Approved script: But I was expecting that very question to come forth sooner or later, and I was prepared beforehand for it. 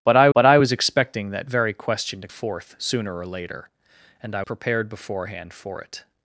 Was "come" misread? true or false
true